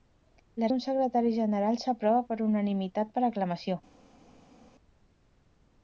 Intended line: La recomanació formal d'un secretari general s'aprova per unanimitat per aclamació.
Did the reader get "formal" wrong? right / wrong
wrong